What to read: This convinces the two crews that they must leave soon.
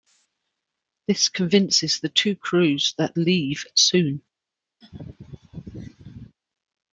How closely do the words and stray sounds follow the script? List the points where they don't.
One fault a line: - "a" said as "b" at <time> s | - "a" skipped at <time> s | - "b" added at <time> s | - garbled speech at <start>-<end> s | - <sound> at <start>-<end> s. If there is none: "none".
- "they must" skipped at 3.1 s
- laugh at 4.8-6.4 s